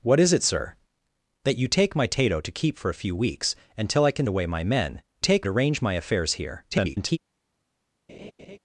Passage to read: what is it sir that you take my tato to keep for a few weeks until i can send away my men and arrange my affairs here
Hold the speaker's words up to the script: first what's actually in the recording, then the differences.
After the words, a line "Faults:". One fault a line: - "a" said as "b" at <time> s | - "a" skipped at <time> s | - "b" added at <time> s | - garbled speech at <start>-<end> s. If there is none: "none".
what is it sir that you take my tato to keep for a few weeks until i can away my men take arrange my affairs here [garbled]
Faults:
- "send" skipped at 4.3 s
- "and" said as "take" at 5.2 s
- garbled speech at 6.7-7.2 s